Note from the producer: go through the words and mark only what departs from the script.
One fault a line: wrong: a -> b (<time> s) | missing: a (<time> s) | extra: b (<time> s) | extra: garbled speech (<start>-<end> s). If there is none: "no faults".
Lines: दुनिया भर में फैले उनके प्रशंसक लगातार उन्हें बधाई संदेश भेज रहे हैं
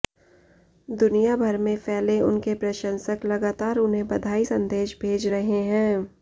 no faults